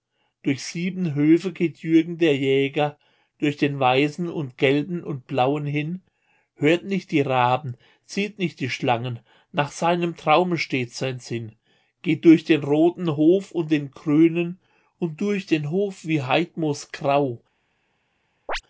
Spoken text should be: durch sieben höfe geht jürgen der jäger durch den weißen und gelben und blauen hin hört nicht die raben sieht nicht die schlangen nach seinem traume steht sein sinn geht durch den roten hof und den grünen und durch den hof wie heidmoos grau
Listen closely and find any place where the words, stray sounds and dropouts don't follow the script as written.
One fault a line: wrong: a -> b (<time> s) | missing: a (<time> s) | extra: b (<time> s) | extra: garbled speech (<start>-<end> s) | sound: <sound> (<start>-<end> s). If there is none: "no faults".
sound: chirp (18.5-18.6 s)